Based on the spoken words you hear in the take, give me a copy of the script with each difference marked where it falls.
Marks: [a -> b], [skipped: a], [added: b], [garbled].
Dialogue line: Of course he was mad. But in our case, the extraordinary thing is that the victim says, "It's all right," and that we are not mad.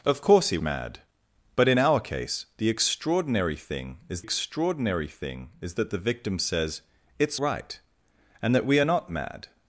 Of course he [skipped: was] mad. But in our case, the extraordinary thing is [added: extraordinary thing is] that the victim says, "It's [skipped: all] right," and that we are not mad.